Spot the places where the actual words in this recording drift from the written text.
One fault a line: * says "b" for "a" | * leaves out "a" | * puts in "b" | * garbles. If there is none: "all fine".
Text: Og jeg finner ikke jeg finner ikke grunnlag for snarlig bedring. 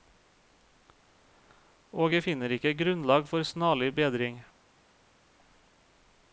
* leaves out "jeg finner ikke"